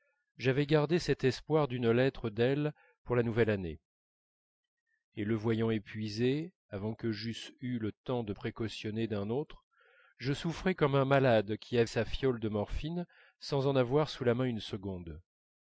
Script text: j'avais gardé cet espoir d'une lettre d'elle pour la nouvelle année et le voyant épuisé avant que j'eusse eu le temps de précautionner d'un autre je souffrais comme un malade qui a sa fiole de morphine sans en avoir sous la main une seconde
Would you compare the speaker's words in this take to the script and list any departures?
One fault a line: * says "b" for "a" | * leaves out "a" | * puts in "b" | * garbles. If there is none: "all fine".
all fine